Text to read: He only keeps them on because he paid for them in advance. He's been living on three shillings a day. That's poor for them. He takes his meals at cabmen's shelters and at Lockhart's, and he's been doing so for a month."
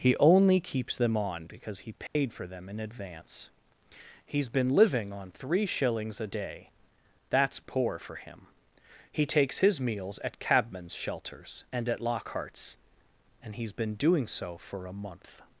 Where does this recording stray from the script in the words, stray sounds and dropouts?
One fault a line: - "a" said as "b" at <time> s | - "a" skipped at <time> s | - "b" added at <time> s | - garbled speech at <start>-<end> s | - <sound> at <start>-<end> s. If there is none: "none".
- dropout at 2.1-2.2 s
- "them" said as "him" at 8.2 s